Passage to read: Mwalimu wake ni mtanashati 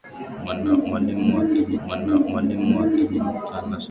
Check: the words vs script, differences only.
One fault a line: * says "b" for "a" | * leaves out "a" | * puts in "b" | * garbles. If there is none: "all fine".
* puts in "mwalimu wake ni"